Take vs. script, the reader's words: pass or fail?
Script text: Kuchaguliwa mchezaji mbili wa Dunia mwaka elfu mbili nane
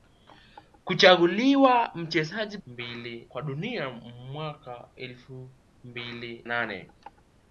pass